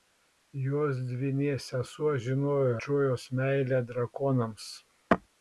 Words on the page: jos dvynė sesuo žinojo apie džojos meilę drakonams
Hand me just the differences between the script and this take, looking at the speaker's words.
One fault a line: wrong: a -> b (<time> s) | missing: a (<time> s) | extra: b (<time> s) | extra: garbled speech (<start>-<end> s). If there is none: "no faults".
missing: apie (2.7 s)